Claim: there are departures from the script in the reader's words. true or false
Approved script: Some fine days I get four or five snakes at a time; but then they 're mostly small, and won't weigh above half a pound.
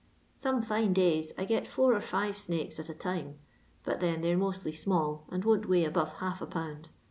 false